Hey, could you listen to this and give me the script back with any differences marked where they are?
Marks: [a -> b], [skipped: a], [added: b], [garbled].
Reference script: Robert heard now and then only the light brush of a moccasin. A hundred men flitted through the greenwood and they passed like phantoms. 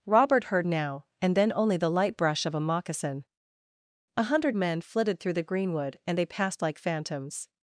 Robert heard now and then only the light brush of a moccasin. A hundred men flitted through the greenwood and they passed like phantoms.